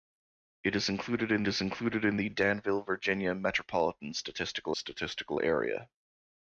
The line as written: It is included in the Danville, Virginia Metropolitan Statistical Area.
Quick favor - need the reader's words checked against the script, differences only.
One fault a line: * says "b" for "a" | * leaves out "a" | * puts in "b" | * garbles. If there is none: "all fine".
* puts in "is included in"
* puts in "Statistical"